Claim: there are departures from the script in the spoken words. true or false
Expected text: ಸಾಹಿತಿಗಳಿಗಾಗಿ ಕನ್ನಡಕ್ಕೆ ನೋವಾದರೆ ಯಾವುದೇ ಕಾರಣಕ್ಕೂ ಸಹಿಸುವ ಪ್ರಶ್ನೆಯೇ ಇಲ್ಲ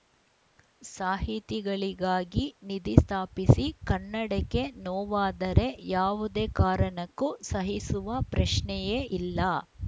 true